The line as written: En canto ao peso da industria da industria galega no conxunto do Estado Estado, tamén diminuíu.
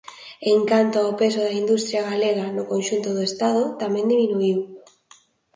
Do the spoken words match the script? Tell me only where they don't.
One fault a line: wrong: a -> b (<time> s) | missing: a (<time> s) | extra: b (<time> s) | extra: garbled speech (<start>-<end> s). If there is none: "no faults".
missing: da industria (2.1 s)
missing: Estado (3.6 s)